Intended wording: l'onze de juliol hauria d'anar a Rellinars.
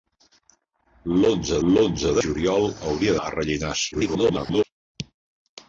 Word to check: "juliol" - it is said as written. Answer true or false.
true